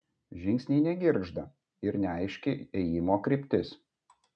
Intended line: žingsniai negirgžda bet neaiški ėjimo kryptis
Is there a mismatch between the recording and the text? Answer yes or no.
yes